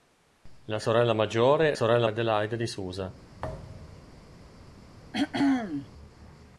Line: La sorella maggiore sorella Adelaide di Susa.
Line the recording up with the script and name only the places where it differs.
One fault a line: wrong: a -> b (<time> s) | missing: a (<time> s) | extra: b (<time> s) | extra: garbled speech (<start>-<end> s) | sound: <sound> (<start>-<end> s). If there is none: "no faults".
sound: thud (3.4-4.2 s)
sound: throat clearing (5.1-5.9 s)